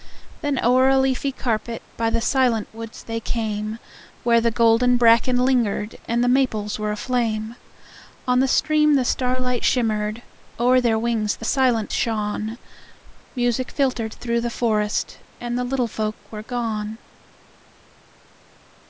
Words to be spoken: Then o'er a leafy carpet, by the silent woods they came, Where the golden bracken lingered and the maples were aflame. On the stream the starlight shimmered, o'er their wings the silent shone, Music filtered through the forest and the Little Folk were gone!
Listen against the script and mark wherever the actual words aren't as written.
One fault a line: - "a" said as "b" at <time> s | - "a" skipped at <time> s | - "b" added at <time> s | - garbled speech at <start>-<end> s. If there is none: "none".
none